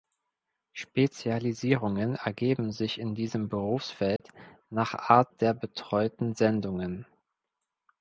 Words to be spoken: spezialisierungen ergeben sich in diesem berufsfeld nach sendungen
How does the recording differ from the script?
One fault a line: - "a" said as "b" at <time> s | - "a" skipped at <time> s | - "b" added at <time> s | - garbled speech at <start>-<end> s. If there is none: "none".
- "art der betreuten" added at 4.9 s